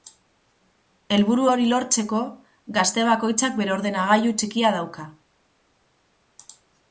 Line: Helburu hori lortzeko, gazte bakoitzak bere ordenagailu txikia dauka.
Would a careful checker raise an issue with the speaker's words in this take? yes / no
no